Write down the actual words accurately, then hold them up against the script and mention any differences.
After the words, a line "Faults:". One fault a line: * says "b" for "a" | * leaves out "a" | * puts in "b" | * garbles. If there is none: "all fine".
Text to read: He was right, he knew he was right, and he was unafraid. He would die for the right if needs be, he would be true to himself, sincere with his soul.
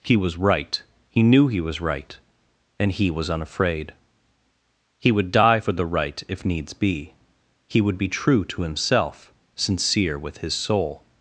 He was right, he knew he was right, and he was unafraid. He would die for the right if needs be, he would be true to himself, sincere with his soul.
Faults:
all fine